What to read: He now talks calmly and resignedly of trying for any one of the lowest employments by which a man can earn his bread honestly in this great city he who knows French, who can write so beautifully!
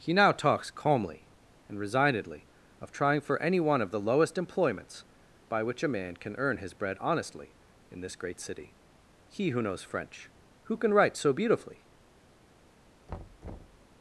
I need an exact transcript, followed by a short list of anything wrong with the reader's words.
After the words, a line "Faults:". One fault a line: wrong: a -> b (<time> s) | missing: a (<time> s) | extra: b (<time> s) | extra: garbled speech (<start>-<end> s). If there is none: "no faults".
He now talks calmly and resignedly of trying for any one of the lowest employments by which a man can earn his bread honestly in this great city he who knows French, who can write so beautifully!
Faults:
no faults